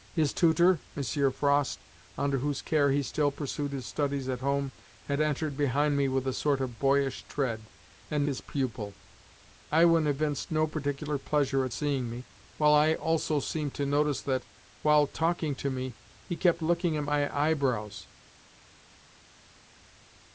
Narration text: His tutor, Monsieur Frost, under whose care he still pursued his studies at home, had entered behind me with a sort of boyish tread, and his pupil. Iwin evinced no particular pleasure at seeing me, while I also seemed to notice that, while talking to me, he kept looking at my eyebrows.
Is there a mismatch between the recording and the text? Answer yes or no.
no